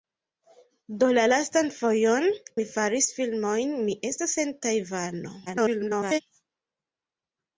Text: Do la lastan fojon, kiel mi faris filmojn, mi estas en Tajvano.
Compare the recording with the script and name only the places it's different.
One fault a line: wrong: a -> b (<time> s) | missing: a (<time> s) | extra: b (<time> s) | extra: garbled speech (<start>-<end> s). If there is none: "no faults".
missing: kiel (2.2 s)
extra: garbled speech (5.5-6.2 s)